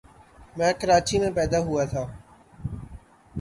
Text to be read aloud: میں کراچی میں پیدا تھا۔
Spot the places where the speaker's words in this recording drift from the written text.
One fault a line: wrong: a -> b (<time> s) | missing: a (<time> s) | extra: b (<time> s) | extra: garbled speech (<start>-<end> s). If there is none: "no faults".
extra: ہوا (1.7 s)